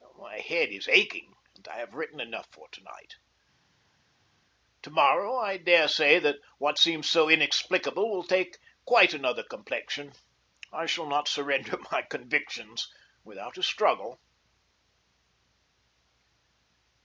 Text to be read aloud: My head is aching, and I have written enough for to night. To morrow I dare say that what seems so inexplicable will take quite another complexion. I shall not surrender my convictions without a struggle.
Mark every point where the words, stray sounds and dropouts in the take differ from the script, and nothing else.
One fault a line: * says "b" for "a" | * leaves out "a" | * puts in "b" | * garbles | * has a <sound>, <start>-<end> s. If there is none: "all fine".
all fine